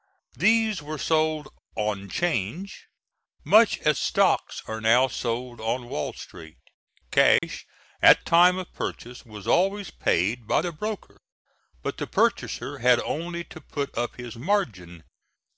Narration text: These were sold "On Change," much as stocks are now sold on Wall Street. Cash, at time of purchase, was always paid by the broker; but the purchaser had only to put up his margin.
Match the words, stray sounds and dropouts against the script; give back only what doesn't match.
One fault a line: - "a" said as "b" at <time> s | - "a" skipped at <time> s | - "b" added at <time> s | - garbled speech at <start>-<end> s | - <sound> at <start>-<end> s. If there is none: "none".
- dropout at 7.4-7.4 s